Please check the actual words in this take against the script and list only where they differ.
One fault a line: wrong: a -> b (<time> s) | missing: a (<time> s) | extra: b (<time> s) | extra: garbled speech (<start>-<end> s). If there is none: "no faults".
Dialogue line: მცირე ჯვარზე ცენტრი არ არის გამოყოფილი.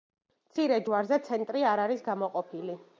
no faults